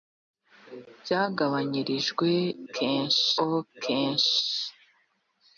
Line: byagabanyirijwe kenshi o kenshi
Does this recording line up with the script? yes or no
yes